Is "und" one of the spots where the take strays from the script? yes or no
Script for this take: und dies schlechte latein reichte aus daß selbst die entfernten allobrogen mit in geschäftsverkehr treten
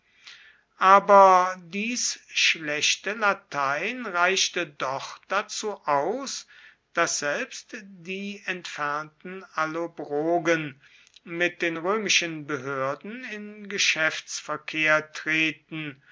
yes